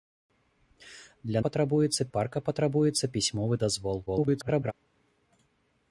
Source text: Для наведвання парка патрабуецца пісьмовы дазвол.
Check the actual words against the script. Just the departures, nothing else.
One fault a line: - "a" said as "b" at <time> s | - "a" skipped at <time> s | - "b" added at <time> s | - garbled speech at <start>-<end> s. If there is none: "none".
- "наведвання" said as "патрабуецца" at 1.5 s
- garbled speech at 4.1-4.7 s